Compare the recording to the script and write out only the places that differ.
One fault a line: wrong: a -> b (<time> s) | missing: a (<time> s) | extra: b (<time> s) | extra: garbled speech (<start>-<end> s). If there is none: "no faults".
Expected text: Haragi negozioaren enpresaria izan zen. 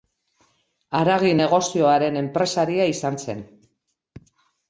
no faults